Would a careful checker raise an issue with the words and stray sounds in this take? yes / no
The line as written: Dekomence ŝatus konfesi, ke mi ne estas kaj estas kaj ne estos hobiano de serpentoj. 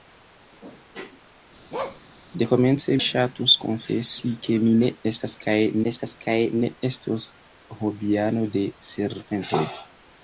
yes